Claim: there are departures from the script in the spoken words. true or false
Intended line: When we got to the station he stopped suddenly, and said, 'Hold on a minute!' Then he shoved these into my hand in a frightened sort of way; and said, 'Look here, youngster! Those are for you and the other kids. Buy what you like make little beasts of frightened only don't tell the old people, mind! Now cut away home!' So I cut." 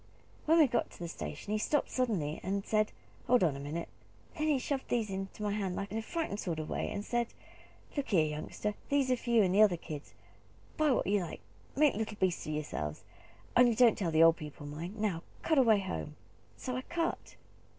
true